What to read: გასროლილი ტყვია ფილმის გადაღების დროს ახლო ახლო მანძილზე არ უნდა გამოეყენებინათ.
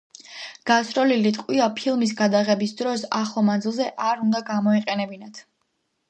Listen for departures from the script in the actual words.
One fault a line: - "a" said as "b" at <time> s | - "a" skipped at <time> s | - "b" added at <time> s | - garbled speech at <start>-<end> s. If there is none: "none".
- "ახლო" skipped at 3.4 s